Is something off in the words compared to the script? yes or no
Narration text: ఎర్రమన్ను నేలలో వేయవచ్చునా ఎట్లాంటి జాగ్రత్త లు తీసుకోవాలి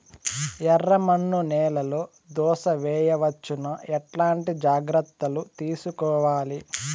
yes